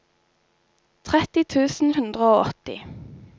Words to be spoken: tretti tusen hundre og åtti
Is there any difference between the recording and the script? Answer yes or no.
no